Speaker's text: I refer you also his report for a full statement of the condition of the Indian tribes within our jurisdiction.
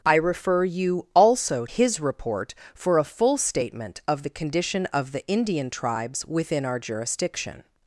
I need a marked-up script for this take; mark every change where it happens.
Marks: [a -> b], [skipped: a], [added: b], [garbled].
I refer you also his report for a full statement of the condition of the Indian tribes within our jurisdiction.